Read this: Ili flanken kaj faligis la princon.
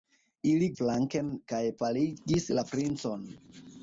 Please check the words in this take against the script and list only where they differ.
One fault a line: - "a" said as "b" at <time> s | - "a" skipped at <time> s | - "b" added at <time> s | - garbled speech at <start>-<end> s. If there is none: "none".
none